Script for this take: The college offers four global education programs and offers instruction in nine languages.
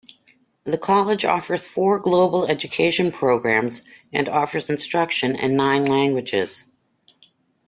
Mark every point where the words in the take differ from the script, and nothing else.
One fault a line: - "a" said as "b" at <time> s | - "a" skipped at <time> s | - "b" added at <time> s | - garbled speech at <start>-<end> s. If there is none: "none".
none